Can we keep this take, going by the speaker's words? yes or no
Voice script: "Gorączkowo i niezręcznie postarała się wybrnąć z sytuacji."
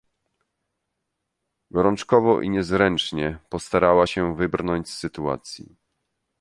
yes